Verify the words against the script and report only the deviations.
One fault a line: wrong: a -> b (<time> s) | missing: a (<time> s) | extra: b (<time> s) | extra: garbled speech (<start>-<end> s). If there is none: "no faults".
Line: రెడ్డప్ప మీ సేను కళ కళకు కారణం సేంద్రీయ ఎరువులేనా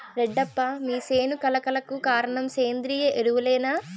no faults